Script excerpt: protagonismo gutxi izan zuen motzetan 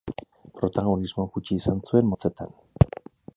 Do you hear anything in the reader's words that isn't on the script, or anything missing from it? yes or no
no